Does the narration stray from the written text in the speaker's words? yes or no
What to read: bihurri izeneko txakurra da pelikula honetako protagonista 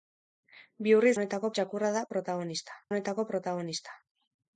yes